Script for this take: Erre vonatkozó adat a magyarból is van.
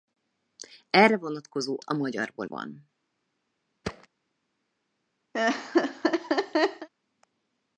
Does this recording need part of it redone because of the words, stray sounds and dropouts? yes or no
yes